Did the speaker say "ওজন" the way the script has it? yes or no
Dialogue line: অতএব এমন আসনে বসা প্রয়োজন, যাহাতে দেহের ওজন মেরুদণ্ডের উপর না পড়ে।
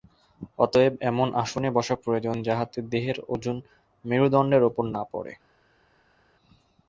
yes